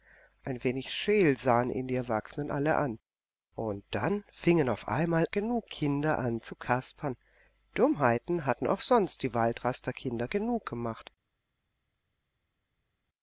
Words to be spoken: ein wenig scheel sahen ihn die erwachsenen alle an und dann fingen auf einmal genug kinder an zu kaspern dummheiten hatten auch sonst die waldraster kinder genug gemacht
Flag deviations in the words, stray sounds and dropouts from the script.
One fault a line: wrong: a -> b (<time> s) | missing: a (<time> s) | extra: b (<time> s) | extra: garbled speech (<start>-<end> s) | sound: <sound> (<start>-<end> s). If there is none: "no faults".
no faults